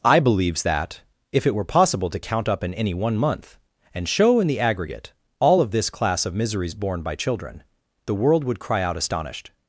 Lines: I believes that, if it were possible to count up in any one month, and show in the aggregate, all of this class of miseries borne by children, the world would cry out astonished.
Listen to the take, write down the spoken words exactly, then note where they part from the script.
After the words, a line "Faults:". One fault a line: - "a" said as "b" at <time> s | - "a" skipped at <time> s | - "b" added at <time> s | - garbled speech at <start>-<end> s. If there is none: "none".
I believes that, if it were possible to count up in any one month, and show in the aggregate, all of this class of miseries borne by children, the world would cry out astonished.
Faults:
none